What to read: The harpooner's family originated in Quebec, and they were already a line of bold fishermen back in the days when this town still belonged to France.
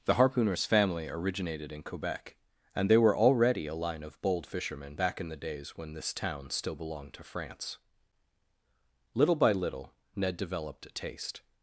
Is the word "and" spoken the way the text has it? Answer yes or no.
yes